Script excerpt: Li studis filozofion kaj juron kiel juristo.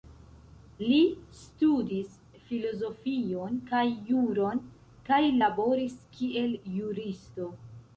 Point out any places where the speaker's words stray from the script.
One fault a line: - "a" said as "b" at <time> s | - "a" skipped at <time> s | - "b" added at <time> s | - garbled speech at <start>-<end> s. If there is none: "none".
- "kaj laboris" added at 5.1 s